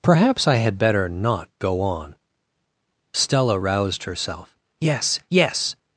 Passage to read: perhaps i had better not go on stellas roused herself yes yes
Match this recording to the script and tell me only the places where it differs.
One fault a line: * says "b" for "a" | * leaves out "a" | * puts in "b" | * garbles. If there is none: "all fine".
* says "stella" for "stellas"